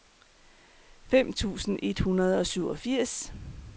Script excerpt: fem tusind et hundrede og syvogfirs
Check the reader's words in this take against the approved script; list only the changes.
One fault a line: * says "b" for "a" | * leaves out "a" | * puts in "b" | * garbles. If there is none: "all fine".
all fine